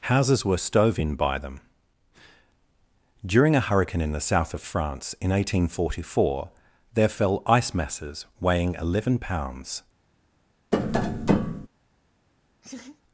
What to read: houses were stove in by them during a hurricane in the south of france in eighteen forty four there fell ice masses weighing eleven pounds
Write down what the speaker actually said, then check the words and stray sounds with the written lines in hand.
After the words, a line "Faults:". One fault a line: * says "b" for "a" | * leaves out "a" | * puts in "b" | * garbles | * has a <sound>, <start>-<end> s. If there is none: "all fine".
houses were stove in by them during a hurricane in the south of france in eighteen forty four there fell ice masses weighing eleven pounds
Faults:
* has a tap, 10.7-11.7 s
* has a laugh, 12.6-13.0 s